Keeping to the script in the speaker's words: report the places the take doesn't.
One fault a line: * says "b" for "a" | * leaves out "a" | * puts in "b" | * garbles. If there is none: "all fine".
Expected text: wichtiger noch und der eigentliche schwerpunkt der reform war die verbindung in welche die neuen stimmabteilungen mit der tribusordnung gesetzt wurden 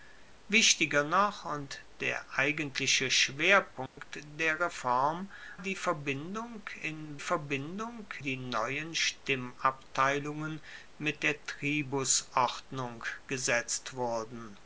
* leaves out "war"
* says "verbindung" for "welche"